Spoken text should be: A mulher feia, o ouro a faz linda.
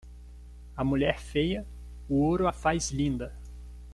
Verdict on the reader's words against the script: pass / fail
pass